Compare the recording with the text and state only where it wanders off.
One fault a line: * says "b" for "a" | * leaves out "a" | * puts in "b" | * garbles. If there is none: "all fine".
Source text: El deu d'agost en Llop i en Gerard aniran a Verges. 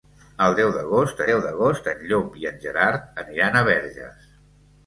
* puts in "deu d'agost"